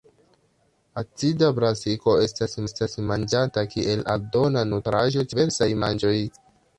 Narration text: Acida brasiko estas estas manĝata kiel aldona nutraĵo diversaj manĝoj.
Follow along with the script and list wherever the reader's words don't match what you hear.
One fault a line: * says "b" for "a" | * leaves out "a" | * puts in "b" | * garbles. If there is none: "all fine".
all fine